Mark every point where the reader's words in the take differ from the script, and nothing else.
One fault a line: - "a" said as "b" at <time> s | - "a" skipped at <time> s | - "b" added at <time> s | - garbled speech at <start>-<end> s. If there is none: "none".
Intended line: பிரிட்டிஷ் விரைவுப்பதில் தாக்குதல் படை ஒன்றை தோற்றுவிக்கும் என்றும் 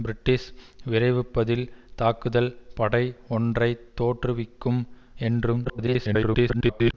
- garbled speech at 5.6-6.9 s